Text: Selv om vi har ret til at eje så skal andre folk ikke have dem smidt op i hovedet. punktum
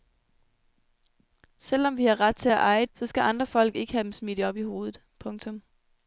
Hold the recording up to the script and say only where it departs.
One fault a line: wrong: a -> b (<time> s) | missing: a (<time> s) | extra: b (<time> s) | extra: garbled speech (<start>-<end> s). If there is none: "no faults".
no faults